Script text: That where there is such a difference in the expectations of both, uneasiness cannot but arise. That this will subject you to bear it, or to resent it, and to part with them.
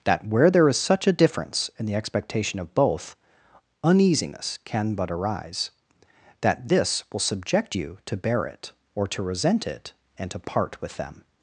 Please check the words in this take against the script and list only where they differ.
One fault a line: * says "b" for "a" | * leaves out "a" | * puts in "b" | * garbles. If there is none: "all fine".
* says "expectation" for "expectations"
* says "can" for "cannot"